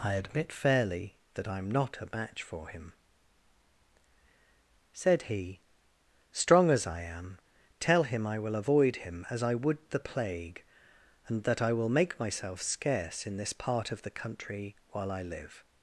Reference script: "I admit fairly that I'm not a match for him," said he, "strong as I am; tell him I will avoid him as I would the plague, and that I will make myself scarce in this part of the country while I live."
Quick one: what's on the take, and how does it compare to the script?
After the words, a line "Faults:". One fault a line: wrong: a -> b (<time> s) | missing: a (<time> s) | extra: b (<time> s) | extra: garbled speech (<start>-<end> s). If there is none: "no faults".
"I admit fairly that I'm not a match for him," said he, "strong as I am; tell him I will avoid him as I would the plague, and that I will make myself scarce in this part of the country while I live."
Faults:
no faults